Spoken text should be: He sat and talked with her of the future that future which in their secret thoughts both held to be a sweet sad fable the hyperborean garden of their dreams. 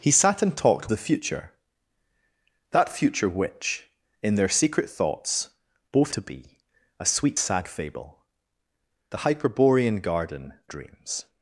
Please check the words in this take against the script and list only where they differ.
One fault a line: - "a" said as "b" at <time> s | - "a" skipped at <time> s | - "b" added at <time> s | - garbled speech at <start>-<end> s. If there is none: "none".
- "with her of" skipped at 0.9 s
- "held" skipped at 6.1 s
- "of their" skipped at 10.5 s